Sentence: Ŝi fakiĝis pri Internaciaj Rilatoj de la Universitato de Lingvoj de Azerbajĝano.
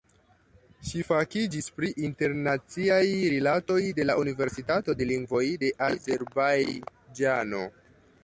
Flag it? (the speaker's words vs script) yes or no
no